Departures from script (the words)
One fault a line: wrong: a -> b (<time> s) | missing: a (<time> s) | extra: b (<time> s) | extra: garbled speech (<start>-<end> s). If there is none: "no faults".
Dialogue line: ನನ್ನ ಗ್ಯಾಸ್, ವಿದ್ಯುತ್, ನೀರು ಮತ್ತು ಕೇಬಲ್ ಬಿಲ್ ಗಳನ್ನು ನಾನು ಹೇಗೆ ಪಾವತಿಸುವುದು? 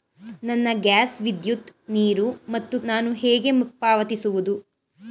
missing: ಕೇಬಲ್ ಬಿಲ್ ಗಳನ್ನು (2.8 s)